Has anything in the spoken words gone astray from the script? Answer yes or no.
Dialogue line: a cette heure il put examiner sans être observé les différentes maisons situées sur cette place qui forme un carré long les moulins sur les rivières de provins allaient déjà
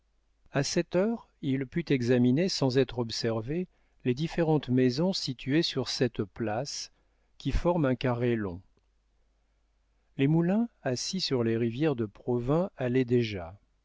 yes